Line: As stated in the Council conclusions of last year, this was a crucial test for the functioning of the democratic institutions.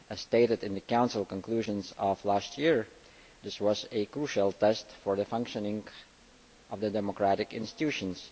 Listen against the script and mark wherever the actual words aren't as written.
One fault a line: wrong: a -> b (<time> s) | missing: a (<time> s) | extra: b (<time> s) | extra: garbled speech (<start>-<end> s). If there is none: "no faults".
no faults